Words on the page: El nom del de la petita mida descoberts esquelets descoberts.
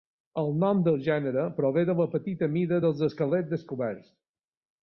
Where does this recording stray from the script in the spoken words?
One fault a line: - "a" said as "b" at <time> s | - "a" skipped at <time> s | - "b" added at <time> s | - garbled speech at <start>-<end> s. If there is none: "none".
- "gènere prové" added at 1.1 s
- "descoberts" said as "dels" at 2.9 s